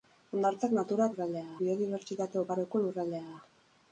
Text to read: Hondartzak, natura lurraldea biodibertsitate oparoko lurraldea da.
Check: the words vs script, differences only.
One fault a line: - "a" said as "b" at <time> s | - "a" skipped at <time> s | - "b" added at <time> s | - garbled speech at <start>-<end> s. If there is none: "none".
none